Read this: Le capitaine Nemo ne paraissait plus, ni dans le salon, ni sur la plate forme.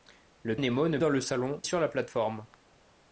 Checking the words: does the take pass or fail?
fail